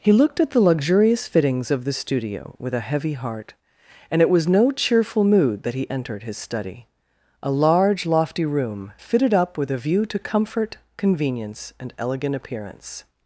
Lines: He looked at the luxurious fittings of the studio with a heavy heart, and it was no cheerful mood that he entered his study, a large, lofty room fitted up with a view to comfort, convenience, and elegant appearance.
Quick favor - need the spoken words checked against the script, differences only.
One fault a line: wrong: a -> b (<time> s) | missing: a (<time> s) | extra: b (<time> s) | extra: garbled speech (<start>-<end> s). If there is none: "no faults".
no faults